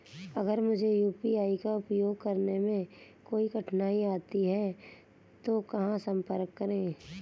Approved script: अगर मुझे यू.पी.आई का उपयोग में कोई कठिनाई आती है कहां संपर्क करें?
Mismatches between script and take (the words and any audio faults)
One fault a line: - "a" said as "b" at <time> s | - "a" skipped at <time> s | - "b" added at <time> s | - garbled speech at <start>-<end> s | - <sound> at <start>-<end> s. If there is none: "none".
- "करने" added at 2.2 s
- "तो" added at 5.5 s